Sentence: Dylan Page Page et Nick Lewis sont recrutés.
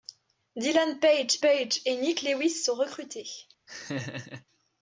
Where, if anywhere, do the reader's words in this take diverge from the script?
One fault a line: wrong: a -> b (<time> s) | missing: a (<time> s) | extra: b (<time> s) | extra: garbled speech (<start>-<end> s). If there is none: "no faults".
no faults